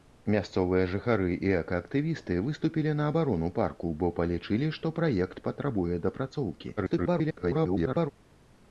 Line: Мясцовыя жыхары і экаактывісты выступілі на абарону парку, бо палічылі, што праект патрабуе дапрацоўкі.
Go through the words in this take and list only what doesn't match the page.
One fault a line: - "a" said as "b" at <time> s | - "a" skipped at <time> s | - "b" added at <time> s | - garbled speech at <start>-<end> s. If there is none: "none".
- garbled speech at 6.8-8.1 s